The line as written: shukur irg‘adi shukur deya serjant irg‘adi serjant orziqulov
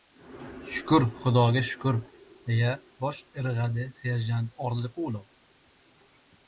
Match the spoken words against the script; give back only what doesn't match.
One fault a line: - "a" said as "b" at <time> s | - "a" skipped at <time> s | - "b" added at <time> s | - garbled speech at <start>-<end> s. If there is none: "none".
- "irg‘adi" said as "xudoga" at 1.2 s
- "serjant" said as "bosh" at 3.0 s